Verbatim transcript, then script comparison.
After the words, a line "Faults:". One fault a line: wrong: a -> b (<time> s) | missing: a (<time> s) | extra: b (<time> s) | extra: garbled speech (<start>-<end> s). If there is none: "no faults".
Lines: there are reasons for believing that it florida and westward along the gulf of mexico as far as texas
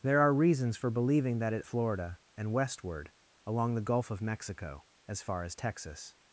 there are reasons for believing that it florida and westward along the gulf of mexico as far as texas
Faults:
no faults